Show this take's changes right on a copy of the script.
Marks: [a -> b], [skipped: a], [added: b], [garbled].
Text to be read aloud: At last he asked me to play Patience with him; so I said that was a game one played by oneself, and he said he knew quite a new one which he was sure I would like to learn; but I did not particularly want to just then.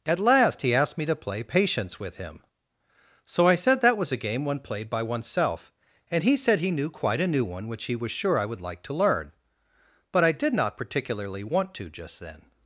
At last he asked me to play Patience with him; so I said that was a game one played by oneself, and he said he knew quite a new one which he was sure I would like to learn; but I did not particularly want to just then.